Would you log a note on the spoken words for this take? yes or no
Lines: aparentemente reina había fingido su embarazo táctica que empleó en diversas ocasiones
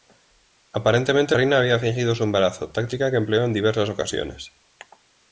no